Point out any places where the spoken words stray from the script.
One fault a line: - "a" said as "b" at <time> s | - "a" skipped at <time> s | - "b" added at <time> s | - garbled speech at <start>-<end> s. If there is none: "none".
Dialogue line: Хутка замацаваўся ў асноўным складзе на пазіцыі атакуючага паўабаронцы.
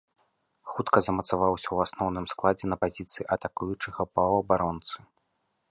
none